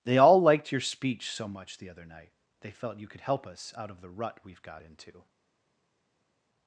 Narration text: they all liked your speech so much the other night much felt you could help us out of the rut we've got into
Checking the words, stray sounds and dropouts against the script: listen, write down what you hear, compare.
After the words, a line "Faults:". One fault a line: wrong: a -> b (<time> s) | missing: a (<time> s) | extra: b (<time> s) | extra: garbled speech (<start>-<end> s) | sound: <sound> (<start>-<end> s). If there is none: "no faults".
they all liked your speech so much the other night they felt you could help us out of the rut we've got into
Faults:
wrong: much -> they (2.6 s)